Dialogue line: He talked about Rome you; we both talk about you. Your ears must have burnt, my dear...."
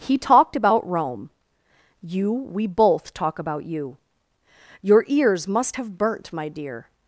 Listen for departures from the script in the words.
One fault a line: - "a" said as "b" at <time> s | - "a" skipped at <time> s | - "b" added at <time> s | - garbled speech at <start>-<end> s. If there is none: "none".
none